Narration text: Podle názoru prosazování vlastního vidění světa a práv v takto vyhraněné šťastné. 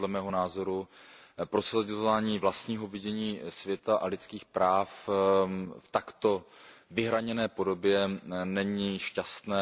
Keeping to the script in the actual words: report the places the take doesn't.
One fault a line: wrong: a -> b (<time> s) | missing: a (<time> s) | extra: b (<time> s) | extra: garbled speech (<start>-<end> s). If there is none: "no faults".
extra: mého (0.1 s)
extra: lidských (4.1 s)
extra: podobě není (7.5 s)